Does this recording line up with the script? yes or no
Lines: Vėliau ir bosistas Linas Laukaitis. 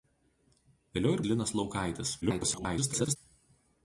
no